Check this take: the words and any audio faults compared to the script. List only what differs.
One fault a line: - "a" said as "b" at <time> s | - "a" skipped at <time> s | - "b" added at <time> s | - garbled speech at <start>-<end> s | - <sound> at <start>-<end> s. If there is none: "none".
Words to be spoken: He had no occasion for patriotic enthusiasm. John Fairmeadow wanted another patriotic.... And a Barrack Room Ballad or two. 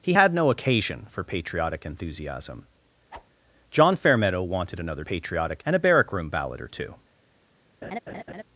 - whoosh at 3.1-3.3 s
- laugh at 7.8-8.4 s